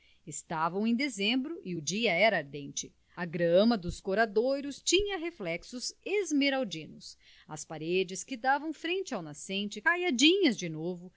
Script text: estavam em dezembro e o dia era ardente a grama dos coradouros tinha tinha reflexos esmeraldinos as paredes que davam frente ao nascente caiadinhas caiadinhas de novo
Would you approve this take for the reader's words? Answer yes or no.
no